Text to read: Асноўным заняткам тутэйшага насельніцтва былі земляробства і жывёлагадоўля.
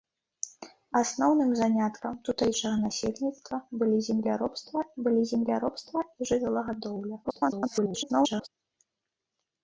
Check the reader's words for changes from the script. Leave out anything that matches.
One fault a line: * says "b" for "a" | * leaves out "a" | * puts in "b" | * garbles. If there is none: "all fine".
* puts in "былі земляробства"
* garbles